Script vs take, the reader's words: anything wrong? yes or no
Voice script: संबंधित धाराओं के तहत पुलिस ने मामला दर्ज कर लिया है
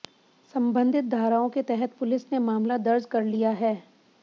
no